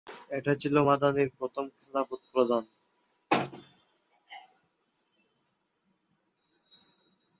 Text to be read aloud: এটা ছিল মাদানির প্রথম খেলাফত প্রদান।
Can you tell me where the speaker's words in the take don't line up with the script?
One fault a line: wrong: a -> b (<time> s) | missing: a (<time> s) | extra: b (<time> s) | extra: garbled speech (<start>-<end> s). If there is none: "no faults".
no faults